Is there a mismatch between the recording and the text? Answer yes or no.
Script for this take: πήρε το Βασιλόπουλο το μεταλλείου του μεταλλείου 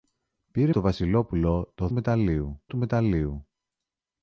no